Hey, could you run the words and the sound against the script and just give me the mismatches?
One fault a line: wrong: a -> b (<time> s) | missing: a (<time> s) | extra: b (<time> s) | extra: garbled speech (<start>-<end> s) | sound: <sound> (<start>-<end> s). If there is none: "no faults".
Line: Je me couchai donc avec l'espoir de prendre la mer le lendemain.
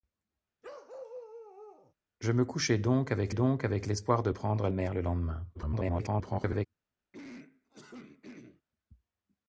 sound: bark (0.6-1.9 s)
extra: donc avec (3.3 s)
missing: la (4.7 s)
extra: garbled speech (5.5-6.7 s)
sound: throat clearing (7.1-8.6 s)